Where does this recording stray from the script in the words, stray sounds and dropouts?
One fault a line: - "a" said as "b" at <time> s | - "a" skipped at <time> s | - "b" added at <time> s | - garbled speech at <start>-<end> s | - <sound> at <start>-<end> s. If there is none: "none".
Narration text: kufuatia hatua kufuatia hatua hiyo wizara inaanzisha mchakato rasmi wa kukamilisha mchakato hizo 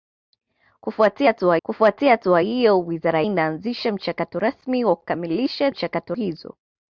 none